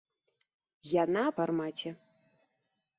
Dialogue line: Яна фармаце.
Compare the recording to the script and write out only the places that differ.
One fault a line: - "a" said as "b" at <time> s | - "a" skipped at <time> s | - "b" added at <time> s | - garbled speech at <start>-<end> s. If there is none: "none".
none